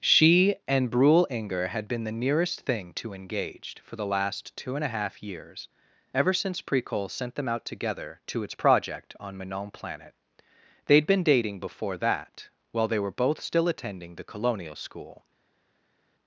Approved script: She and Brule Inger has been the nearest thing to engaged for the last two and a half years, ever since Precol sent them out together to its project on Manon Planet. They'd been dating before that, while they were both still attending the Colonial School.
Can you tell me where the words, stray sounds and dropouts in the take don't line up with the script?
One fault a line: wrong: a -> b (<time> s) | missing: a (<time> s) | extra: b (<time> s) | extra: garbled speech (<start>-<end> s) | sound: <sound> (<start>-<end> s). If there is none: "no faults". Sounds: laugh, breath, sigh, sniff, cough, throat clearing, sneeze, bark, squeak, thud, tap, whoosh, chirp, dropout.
wrong: has -> had (1.7 s)